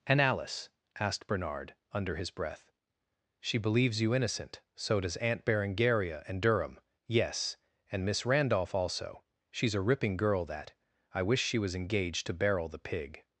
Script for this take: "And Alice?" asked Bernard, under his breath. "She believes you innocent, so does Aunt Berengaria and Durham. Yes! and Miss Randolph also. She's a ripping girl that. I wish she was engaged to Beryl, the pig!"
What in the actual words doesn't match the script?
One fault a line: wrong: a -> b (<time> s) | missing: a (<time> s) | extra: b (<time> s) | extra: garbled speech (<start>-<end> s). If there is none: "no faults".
no faults